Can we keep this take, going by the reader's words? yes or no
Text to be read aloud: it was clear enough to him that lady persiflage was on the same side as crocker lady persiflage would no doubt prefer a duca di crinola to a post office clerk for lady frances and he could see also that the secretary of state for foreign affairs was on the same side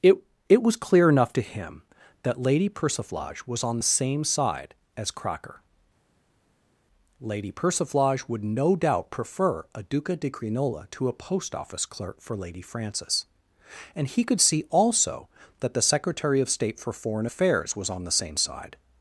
no